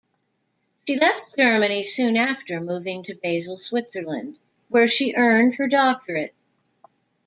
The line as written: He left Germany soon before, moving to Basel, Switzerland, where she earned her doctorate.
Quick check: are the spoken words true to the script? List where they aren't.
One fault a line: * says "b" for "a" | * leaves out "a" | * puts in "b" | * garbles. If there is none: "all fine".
* says "She" for "He"
* says "after" for "before"